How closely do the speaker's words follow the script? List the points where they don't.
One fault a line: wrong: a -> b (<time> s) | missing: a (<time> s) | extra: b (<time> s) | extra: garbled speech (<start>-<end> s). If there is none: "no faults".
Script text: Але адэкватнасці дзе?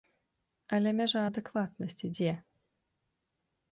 extra: мяжа (1.0 s)